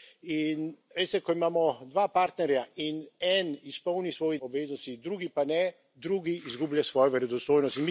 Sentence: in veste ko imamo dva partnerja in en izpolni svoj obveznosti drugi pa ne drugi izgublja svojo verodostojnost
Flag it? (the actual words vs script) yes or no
no